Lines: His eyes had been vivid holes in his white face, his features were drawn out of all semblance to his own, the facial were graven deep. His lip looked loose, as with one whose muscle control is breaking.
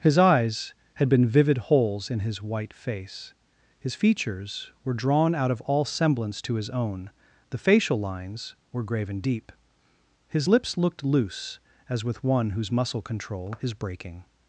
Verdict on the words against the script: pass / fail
fail